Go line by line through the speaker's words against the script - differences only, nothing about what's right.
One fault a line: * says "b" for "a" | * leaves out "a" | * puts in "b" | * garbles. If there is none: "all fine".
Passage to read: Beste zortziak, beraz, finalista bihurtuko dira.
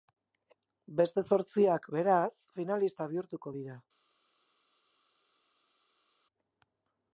all fine